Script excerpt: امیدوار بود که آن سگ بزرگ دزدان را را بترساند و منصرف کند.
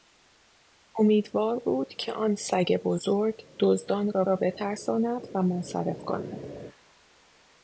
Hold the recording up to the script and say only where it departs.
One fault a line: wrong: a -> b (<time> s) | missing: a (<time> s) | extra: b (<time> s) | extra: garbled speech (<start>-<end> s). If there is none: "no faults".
no faults